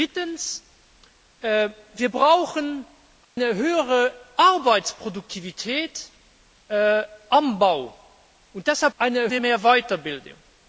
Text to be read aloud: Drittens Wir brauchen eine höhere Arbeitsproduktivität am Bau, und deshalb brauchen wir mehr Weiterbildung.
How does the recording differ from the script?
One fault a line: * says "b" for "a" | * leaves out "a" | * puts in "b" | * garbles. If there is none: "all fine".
* says "eine" for "brauchen"